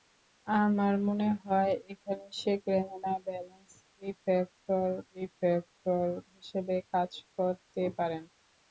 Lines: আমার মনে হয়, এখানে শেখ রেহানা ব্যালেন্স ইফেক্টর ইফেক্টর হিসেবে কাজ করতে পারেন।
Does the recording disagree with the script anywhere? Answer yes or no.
no